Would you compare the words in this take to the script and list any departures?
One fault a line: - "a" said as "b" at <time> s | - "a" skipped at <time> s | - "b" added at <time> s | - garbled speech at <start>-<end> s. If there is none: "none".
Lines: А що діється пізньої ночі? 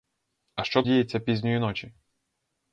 none